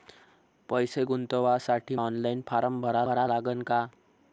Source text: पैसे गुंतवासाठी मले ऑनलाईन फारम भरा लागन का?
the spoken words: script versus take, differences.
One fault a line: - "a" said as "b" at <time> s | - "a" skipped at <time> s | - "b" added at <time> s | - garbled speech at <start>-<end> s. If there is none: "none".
- "मले" skipped at 1.9 s
- "भरा" added at 3.0 s